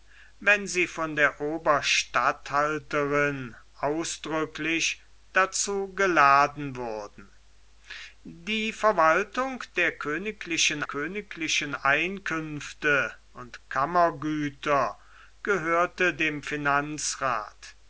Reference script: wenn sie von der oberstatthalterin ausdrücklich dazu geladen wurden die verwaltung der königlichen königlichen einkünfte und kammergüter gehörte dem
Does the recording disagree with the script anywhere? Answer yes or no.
no